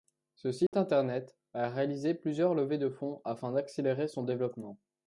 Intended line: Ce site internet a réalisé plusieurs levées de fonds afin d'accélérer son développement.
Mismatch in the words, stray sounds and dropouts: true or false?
true